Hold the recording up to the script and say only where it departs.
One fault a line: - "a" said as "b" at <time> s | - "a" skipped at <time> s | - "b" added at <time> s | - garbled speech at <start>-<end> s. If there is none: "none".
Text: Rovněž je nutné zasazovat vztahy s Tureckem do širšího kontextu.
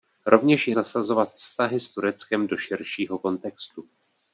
- "nutné" skipped at 0.8 s